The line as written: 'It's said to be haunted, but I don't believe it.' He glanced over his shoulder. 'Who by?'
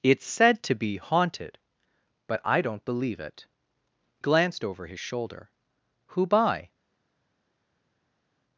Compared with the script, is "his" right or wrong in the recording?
right